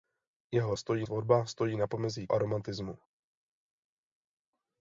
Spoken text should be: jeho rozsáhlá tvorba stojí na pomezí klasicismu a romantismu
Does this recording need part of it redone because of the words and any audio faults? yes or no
yes